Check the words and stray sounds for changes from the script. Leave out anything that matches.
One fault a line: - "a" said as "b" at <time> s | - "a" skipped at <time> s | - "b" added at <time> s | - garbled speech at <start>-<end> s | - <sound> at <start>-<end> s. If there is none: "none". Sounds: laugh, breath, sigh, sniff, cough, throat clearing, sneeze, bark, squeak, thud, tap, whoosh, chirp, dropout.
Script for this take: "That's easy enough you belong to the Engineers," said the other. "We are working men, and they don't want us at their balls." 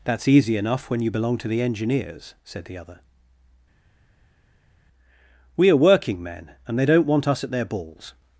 - "when" added at 0.9 s